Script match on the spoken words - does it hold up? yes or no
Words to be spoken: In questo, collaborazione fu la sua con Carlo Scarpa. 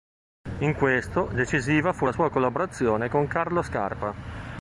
no